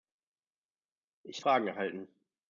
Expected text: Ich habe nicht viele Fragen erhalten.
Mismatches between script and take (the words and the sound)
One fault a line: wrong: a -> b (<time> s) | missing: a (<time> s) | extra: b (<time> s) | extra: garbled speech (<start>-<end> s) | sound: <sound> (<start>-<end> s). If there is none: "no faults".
missing: habe nicht viele (1.4 s)